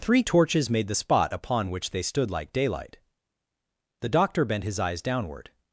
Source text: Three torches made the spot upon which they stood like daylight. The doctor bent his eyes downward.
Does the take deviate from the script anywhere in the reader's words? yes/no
no